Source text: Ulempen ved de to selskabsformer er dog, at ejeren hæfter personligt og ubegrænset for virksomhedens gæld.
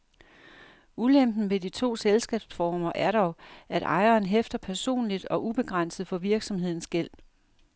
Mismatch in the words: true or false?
false